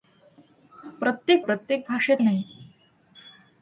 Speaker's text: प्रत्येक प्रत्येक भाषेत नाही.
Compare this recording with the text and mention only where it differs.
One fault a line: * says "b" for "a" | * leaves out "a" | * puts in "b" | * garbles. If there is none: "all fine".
all fine